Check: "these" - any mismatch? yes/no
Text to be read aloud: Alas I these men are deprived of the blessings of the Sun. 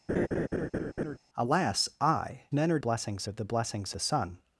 yes